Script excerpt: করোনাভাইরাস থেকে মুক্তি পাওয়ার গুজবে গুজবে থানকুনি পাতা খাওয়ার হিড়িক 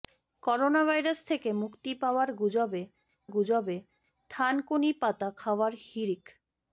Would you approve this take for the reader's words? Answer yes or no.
yes